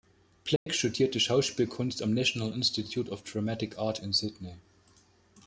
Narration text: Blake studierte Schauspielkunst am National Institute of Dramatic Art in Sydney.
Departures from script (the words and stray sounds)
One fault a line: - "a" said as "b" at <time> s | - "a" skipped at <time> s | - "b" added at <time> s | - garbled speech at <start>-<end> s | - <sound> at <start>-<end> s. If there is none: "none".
- dropout at 0.6-0.7 s